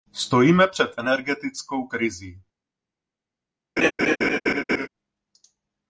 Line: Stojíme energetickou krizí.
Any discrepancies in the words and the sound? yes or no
yes